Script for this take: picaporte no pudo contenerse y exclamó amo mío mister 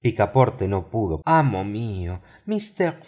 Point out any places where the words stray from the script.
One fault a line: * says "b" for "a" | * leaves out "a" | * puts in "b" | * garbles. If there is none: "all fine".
* leaves out "contenerse y exclamó"